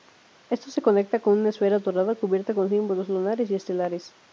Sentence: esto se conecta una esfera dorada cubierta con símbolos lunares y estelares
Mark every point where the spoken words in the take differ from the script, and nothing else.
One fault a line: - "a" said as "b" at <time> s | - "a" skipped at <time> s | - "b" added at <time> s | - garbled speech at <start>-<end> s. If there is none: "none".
- "con" added at 1.2 s